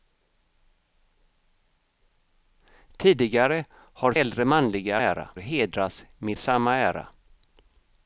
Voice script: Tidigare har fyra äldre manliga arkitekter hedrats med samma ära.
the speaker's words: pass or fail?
fail